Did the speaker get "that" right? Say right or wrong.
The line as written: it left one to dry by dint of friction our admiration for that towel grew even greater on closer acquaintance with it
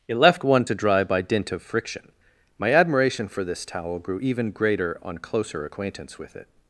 wrong